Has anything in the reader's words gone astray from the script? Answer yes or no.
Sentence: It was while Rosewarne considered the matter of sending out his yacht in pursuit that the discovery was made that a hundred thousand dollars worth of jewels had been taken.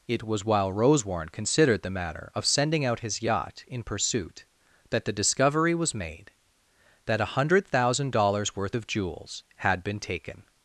no